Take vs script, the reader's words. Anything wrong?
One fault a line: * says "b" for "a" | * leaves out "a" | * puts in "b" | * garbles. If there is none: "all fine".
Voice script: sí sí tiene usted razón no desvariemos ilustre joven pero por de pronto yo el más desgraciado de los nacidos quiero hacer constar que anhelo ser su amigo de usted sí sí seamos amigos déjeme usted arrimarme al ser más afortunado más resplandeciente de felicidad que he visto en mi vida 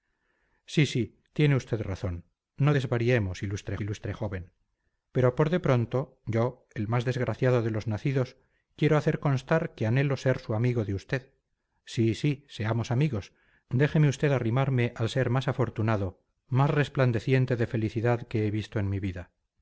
* puts in "ilustre"